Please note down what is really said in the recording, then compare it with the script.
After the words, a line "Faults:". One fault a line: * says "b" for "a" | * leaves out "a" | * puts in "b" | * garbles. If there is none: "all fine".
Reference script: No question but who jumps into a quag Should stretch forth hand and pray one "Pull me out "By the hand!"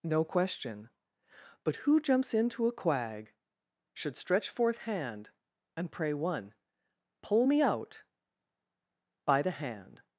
No question but who jumps into a quag Should stretch forth hand and pray one "Pull me out "By the hand!"
Faults:
all fine